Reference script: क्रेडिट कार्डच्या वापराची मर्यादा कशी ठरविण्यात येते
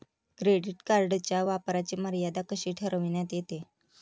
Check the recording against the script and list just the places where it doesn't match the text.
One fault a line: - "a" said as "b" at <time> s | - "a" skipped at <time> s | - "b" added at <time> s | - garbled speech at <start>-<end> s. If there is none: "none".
none